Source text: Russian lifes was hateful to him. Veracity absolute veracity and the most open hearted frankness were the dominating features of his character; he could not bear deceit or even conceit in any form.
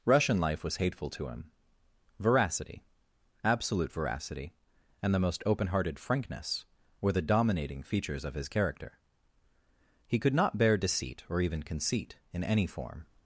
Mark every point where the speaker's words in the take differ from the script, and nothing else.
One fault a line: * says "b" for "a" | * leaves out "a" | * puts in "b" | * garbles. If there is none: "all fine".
* says "life" for "lifes"